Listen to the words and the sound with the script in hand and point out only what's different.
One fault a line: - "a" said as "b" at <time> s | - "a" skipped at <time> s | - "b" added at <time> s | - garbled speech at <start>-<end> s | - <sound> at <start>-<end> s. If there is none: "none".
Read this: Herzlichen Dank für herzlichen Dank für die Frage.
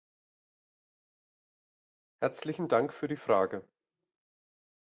- "herzlichen Dank für" skipped at 3.1 s